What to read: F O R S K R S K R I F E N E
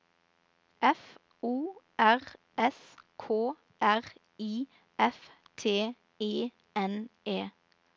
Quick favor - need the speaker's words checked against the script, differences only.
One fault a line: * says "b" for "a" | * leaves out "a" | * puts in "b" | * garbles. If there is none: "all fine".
* leaves out "S K R"
* puts in "T"